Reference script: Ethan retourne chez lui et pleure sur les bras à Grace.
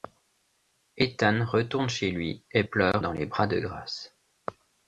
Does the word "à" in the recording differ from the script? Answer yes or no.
yes